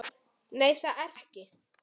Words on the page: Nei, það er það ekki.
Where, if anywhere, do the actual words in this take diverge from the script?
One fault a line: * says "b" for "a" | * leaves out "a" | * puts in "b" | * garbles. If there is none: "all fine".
* leaves out "það"